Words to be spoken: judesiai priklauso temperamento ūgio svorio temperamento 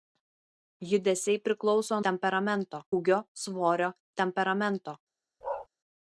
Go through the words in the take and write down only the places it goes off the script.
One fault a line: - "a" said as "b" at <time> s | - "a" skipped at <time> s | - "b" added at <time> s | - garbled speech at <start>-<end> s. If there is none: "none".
none